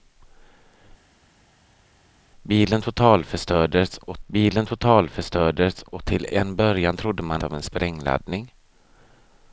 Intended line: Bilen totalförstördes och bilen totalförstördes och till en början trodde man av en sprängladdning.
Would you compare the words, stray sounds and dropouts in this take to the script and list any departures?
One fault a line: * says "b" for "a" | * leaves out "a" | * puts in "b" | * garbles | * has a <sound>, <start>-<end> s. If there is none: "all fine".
all fine